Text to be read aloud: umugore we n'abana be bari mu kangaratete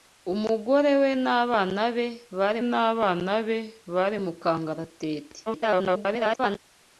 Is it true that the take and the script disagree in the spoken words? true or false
true